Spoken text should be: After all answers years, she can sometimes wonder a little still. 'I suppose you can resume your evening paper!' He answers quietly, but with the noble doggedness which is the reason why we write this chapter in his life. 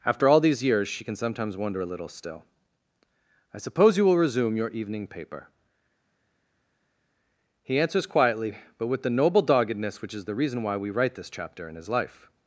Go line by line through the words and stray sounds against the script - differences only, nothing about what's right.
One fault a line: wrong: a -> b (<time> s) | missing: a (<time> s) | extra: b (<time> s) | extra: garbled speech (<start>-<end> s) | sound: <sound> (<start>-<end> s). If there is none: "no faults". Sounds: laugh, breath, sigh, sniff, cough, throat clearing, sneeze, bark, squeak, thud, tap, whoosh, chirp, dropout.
wrong: answers -> these (0.4 s)
wrong: can -> will (4.0 s)